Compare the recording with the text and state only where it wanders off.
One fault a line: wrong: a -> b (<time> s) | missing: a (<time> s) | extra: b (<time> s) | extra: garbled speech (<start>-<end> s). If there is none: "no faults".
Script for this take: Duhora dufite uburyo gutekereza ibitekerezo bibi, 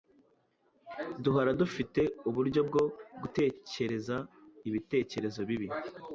extra: bwo (2.7 s)